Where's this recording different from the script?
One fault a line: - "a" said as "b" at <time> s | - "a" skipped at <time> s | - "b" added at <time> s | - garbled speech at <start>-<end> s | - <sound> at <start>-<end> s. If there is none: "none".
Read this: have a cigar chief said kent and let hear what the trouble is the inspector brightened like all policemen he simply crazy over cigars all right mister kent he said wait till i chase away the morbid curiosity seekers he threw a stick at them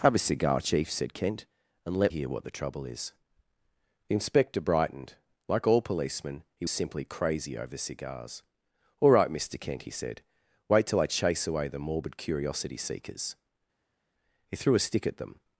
none